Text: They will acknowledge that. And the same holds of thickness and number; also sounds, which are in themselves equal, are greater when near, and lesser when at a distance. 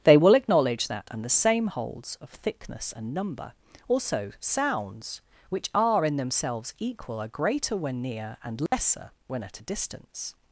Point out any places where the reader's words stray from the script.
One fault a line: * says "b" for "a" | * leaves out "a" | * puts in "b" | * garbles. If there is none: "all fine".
all fine